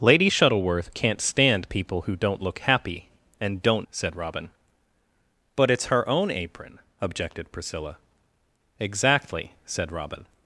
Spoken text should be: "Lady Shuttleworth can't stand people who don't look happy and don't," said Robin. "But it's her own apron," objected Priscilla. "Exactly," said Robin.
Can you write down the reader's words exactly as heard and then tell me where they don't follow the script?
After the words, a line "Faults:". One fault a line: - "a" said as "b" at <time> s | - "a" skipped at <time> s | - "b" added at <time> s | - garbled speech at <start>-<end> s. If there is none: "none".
"Lady Shuttleworth can't stand people who don't look happy and don't," said Robin. "But it's her own apron," objected Priscilla. "Exactly," said Robin.
Faults:
none